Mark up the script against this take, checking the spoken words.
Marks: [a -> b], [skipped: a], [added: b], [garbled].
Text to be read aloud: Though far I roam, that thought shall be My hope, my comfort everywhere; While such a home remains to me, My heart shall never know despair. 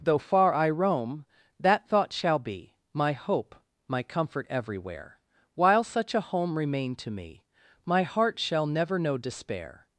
Though far I roam, that thought shall be My hope, my comfort everywhere; While such a home [remains -> remain] to me, My heart shall never know despair.